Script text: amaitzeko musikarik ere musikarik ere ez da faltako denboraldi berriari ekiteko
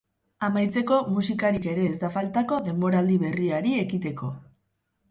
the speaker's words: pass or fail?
fail